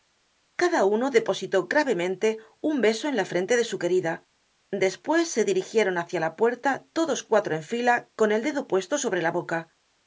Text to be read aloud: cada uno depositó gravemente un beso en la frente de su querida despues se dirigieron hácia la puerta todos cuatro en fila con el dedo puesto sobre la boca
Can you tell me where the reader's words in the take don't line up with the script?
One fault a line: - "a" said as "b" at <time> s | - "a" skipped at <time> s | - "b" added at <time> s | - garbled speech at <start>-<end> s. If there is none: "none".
none